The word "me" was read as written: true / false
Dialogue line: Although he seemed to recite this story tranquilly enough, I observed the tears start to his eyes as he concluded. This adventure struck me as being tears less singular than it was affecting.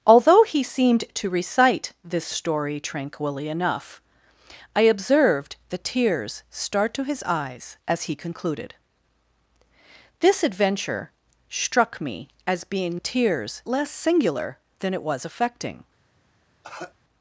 true